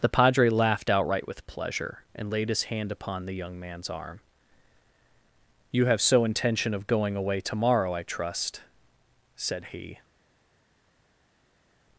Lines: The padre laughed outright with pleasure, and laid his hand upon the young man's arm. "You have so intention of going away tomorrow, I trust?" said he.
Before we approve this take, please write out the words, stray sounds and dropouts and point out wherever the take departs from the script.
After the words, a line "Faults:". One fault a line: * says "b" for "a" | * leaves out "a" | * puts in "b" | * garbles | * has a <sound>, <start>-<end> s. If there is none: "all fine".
The padre laughed outright with pleasure, and laid his hand upon the young man's arm. "You have so intention of going away tomorrow, I trust?" said he.
Faults:
all fine